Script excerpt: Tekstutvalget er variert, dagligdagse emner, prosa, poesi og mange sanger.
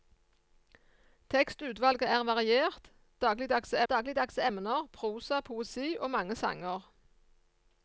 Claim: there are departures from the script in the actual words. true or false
true